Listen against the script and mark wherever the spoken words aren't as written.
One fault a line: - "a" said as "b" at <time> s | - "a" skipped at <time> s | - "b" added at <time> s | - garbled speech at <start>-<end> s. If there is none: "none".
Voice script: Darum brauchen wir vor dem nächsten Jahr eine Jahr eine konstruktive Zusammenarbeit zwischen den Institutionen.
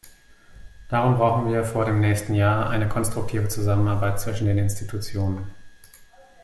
- "Jahr eine" skipped at 2.9 s